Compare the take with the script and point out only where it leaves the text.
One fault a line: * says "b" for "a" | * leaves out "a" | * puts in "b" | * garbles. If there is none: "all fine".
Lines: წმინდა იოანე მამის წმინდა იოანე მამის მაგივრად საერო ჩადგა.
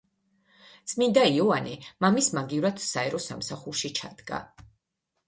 * leaves out "წმინდა იოანე მამის"
* puts in "სამსახურში"